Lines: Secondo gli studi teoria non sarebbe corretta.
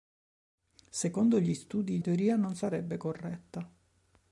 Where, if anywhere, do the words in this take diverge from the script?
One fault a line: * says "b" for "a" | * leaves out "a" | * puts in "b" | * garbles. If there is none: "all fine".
all fine